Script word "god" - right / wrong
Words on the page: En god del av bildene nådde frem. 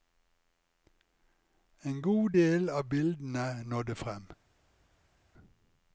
right